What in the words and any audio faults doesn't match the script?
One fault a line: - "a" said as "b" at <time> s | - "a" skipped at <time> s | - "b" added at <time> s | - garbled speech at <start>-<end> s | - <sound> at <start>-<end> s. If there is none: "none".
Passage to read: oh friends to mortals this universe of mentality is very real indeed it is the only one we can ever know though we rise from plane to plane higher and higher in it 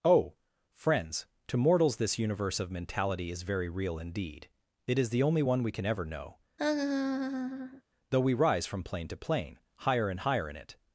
- laugh at 6.6-7.8 s